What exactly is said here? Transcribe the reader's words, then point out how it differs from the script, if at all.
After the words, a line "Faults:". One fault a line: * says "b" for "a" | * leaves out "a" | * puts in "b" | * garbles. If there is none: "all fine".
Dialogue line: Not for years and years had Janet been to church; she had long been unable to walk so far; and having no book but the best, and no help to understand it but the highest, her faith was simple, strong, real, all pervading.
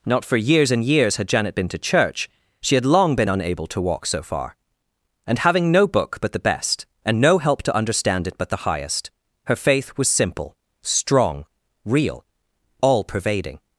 Not for years and years had Janet been to church; she had long been unable to walk so far; and having no book but the best, and no help to understand it but the highest, her faith was simple, strong, real, all pervading.
Faults:
all fine